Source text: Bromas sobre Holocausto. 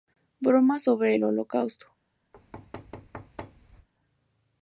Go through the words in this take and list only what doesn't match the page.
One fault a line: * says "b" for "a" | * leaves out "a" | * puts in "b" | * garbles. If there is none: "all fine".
* puts in "el"